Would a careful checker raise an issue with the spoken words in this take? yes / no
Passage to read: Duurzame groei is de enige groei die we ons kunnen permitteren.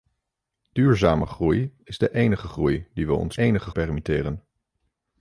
yes